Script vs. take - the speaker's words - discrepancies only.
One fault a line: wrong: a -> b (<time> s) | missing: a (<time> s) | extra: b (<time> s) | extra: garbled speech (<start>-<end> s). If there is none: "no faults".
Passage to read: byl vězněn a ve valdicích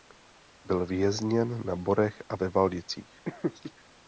extra: na borech (1.6 s)